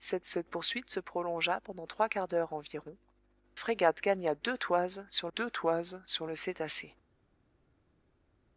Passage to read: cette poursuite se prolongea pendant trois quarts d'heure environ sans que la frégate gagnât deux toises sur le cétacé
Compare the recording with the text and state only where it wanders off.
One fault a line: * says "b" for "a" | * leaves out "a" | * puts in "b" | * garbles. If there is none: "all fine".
* puts in "cette"
* says "frégate gagnât deux toises sur" for "sans que la frégate gagnât"